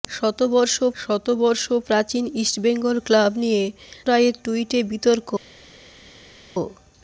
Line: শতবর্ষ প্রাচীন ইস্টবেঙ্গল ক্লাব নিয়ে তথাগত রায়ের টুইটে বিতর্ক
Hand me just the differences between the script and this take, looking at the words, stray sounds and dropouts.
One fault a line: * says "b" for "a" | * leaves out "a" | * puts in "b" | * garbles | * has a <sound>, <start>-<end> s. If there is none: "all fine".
* puts in "শতবর্ষ"
* leaves out "তথাগত"